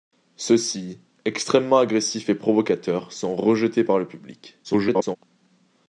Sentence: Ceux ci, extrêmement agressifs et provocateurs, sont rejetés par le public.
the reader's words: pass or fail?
fail